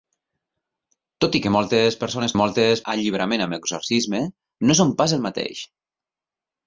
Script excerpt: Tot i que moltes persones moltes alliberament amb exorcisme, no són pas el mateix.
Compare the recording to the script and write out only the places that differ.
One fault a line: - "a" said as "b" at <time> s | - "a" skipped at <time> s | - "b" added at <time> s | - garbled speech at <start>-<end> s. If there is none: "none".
none